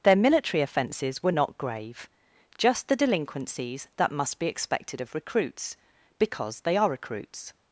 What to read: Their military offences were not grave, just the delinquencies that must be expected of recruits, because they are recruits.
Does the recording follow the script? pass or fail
pass